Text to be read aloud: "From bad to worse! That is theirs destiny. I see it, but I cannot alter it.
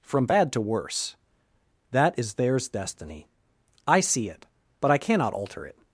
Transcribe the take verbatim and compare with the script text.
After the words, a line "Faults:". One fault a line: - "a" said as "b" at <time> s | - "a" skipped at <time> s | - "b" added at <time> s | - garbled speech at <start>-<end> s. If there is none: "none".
"From bad to worse! That is theirs destiny. I see it, but I cannot alter it.
Faults:
none